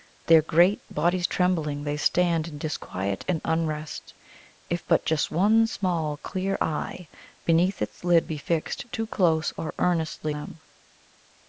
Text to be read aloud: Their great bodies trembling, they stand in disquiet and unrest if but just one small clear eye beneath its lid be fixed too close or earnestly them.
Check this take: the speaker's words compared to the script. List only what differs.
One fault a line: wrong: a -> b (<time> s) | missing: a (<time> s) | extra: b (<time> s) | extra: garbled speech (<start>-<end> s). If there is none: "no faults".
no faults